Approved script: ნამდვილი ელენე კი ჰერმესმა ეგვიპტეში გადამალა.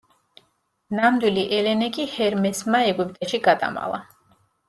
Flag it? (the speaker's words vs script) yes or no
no